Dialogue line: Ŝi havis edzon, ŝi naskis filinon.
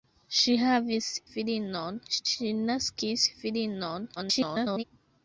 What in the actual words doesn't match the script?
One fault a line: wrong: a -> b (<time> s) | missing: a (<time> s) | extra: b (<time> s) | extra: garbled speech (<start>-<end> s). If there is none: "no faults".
wrong: edzon -> filinon (1.3 s)
extra: garbled speech (4.2-4.8 s)